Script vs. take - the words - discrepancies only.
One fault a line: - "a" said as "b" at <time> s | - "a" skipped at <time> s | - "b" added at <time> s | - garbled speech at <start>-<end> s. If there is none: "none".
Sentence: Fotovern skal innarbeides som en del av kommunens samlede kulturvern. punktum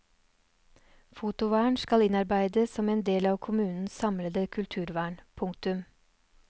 none